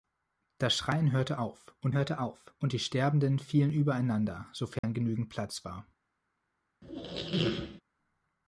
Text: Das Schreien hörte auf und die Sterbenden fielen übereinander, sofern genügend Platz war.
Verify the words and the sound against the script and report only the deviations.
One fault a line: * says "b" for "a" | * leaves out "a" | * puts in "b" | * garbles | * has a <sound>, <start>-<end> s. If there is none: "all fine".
* puts in "hörte auf und"
* has a dropout, 4.8-4.8 s
* has a squeak, 6.8-7.8 s